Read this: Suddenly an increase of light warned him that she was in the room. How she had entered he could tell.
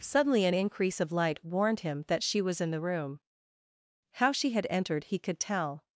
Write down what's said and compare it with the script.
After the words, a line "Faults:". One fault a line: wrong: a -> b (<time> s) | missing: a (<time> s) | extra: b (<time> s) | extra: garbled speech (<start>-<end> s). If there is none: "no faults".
Suddenly an increase of light warned him that she was in the room. How she had entered he could tell.
Faults:
no faults